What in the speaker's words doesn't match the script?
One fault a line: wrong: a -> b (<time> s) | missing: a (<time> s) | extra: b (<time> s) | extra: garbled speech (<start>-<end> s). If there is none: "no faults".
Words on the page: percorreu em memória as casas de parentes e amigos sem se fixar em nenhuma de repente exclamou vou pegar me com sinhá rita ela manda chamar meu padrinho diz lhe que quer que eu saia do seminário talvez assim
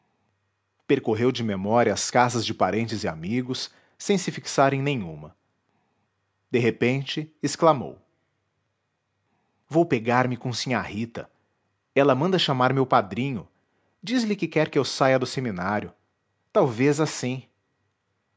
wrong: em -> de (1.3 s)